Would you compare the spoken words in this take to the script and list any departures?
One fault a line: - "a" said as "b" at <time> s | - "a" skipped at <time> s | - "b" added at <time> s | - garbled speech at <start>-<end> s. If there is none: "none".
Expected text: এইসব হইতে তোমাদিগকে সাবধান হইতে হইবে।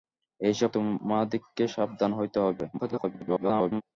- "হইতে" skipped at 0.7 s
- garbled speech at 2.7-3.8 s